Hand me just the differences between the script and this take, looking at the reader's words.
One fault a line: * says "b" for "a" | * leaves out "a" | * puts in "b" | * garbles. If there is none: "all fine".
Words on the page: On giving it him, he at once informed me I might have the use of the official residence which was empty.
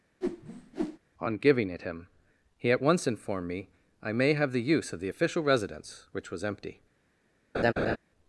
* says "may" for "might"